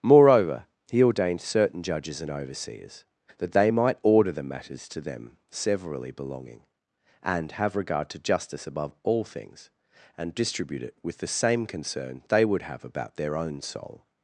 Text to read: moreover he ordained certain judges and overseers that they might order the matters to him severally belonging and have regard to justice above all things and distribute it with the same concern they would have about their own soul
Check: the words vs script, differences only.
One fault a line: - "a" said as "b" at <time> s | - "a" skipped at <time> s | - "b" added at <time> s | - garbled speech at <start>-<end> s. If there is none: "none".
- "him" said as "them" at 5.0 s